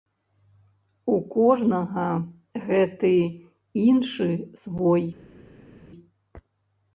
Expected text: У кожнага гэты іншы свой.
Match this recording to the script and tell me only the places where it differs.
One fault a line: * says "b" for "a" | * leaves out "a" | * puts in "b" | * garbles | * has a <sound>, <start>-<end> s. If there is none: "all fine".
all fine